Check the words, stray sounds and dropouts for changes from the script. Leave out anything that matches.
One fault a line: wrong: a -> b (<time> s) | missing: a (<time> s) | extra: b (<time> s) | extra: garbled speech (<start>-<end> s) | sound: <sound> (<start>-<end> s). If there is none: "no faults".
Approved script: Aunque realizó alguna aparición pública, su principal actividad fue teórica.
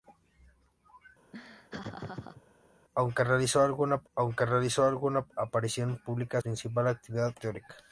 sound: laugh (1.3-2.4 s)
extra: aunque realizó alguna (4.1 s)
missing: su (6.4 s)
missing: fue (7.3 s)